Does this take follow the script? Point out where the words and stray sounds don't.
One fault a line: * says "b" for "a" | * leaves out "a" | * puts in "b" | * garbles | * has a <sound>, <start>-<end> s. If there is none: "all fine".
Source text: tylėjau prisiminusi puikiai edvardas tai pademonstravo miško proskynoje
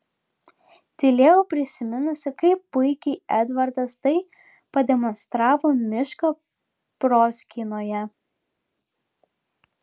* puts in "kaip"